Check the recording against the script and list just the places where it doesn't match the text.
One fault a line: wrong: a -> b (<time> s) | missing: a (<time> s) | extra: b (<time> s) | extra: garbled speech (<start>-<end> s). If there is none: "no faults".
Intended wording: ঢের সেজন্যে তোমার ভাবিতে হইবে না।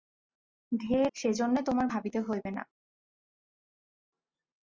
no faults